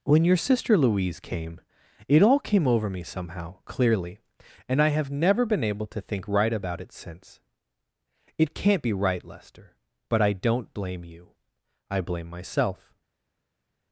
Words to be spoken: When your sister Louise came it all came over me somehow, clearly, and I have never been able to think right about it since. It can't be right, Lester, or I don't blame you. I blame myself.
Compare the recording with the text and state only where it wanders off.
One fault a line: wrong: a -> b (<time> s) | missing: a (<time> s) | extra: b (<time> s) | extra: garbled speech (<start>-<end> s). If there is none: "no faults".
wrong: or -> but (10.1 s)